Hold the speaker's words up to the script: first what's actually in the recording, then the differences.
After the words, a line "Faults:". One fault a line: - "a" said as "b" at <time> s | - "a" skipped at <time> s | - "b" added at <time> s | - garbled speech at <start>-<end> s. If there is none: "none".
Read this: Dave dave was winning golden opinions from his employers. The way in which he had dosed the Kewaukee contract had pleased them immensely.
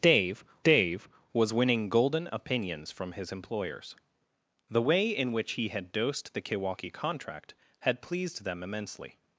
Dave dave was winning golden opinions from his employers. The way in which he had dosed the Kewaukee contract had pleased them immensely.
Faults:
none